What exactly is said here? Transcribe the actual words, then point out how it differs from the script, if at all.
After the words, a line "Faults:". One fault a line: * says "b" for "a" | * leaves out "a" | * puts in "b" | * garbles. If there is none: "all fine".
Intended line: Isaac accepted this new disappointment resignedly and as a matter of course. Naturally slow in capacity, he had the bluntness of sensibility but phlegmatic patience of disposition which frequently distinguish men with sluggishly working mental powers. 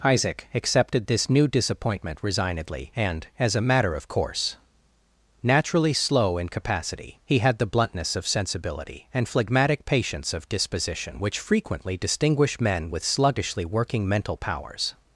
Isaac accepted this new disappointment resignedly and as a matter of course. Naturally slow in capacity, he had the bluntness of sensibility and phlegmatic patience of disposition which frequently distinguish men with sluggishly working mental powers.
Faults:
* says "and" for "but"